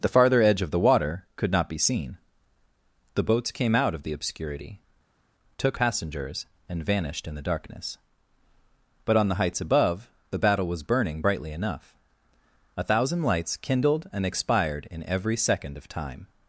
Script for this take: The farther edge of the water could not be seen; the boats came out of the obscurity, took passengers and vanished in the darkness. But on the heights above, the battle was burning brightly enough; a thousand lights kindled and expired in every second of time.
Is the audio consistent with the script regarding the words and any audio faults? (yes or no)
yes